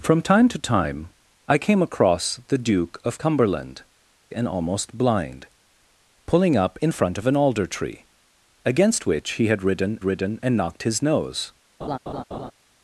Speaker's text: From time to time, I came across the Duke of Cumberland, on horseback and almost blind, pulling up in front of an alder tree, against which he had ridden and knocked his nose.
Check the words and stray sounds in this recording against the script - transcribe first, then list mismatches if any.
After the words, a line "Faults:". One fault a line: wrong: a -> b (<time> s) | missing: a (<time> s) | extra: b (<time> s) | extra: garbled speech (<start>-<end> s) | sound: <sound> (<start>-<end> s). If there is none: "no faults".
From time to time, I came across the Duke of Cumberland, and almost blind, pulling up in front of an alder tree, against which he had ridden ridden and knocked his nose.
Faults:
missing: on horseback (3.8 s)
extra: ridden (10.0 s)
sound: laugh (11.8-12.5 s)